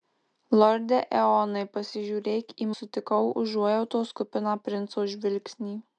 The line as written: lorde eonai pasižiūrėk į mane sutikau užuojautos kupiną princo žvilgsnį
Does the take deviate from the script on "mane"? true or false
true